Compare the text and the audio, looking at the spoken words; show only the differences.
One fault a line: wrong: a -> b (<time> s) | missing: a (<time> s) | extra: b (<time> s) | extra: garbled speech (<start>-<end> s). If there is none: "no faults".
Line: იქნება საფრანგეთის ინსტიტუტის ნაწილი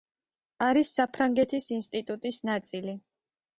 wrong: იქნება -> არის (0.7 s)